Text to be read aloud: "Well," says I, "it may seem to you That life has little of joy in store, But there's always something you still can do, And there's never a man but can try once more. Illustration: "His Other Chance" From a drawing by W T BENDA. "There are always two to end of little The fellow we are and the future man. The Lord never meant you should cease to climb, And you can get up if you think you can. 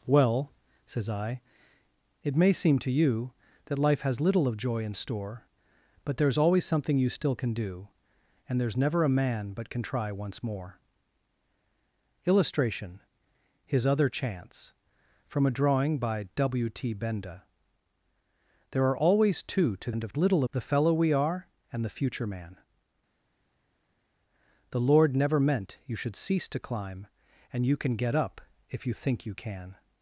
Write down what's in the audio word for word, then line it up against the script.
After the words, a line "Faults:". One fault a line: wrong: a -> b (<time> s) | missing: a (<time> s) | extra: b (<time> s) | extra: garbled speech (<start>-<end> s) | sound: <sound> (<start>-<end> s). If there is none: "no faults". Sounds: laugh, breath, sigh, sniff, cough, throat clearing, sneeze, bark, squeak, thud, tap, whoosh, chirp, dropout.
"Well," says I, "it may seem to you That life has little of joy in store, But there's always something you still can do, And there's never a man but can try once more. Illustration: "His Other Chance" From a drawing by W T BENDA. "There are always two to end of little The fellow we are and the future man. The Lord never meant you should cease to climb, And you can get up if you think you can.
Faults:
no faults